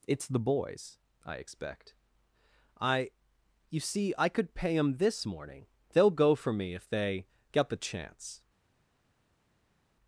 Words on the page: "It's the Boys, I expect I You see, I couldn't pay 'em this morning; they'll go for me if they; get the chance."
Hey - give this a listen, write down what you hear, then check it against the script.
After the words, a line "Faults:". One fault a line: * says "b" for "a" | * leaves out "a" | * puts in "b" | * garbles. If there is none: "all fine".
"It's the Boys, I expect I You see, I could pay 'em this morning; they'll go for me if they; get the chance."
Faults:
* says "could" for "couldn't"